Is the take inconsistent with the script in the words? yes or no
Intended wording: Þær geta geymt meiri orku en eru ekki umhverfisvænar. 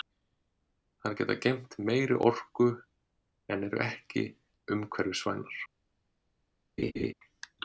no